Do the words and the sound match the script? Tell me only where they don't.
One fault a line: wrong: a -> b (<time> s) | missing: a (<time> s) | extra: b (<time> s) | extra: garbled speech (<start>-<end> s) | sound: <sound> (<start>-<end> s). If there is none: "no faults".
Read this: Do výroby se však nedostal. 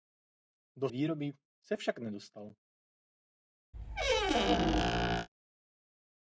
sound: squeak (3.7-5.3 s)